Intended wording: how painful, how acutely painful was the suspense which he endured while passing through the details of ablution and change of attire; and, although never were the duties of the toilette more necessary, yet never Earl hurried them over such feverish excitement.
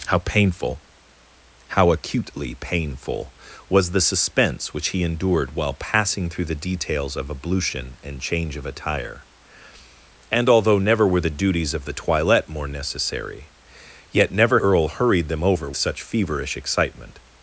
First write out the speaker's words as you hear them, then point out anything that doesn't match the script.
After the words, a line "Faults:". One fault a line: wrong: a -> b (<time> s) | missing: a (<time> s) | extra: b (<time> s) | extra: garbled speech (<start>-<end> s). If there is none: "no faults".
how painful, how acutely painful was the suspense which he endured while passing through the details of ablution and change of attire; and, although never were the duties of the toilette more necessary, yet never Earl hurried them over such feverish excitement.
Faults:
no faults